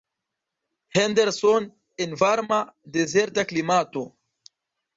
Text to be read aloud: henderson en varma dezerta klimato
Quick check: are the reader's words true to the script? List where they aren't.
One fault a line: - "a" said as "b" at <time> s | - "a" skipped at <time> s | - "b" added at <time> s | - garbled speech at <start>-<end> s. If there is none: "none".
none